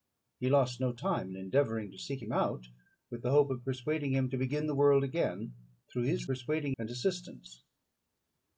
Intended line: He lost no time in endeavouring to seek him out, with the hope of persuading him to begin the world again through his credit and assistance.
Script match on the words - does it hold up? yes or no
no